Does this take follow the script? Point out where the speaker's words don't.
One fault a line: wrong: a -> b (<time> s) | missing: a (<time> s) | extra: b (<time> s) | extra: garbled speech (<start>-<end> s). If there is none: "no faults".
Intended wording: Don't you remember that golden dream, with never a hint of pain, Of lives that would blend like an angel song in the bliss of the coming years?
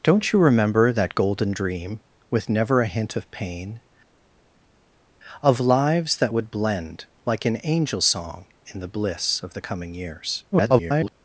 extra: garbled speech (10.5-11.1 s)